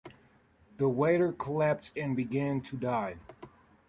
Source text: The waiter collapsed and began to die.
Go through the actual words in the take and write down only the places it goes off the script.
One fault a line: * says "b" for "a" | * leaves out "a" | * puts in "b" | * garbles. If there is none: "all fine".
all fine